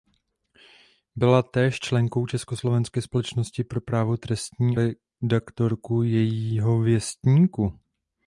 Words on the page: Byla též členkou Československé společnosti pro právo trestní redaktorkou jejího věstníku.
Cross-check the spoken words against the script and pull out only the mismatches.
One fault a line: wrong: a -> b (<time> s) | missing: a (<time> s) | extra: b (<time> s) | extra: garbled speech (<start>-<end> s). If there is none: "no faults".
no faults